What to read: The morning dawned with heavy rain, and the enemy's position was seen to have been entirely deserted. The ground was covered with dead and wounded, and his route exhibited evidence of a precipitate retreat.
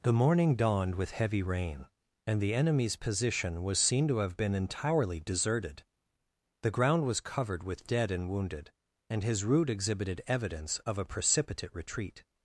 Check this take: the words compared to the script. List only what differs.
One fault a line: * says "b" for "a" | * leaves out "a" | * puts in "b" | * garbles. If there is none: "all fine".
all fine